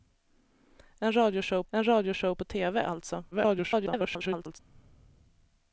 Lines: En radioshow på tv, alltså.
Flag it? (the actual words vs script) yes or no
yes